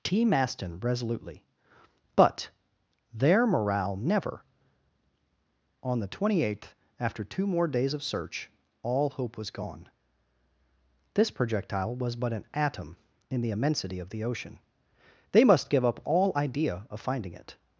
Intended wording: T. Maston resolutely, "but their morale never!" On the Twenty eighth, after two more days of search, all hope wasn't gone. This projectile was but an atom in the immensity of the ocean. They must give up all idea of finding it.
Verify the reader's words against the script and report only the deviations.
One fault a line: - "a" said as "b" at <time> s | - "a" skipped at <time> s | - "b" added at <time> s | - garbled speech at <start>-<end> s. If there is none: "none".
- "wasn't" said as "was" at 9.4 s